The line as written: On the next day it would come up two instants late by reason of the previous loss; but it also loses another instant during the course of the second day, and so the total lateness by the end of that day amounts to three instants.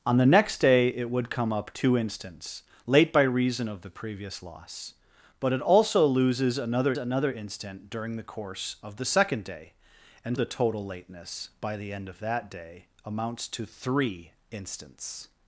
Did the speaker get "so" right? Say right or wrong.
wrong